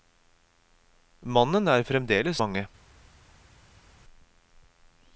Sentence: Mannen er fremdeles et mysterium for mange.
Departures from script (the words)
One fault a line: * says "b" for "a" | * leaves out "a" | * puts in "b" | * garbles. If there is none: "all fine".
* leaves out "et mysterium for"